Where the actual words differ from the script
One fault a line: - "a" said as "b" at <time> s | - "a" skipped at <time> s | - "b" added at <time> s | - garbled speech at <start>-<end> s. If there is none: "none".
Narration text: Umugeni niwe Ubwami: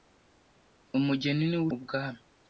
none